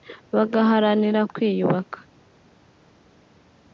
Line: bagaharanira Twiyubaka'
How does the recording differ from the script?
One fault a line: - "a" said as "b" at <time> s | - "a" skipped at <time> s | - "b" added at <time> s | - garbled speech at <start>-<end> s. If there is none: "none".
none